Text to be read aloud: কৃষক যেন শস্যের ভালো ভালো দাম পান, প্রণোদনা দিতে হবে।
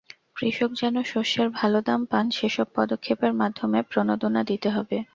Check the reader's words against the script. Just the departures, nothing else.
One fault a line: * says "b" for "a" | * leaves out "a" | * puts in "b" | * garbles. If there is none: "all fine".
* leaves out "ভালো"
* puts in "সেসব পদক্ষেপের মাধ্যমে"